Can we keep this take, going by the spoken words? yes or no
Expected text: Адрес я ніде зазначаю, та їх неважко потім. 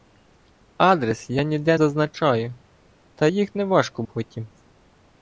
yes